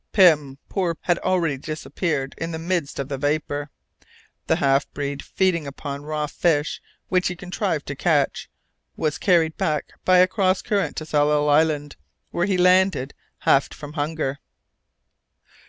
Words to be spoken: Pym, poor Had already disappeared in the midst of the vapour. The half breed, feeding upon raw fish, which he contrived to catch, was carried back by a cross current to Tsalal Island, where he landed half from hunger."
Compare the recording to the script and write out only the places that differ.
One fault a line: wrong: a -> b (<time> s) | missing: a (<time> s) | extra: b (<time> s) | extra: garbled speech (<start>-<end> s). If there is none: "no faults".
no faults